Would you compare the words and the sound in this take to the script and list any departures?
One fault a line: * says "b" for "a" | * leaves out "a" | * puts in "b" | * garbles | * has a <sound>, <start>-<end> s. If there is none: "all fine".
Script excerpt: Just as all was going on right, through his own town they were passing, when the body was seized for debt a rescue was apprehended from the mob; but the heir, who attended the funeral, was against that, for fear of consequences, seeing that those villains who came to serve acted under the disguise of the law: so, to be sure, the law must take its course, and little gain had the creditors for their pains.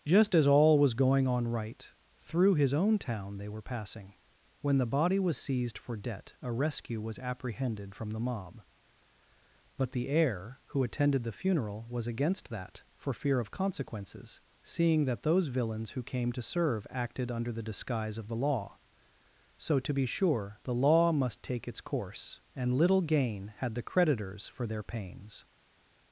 all fine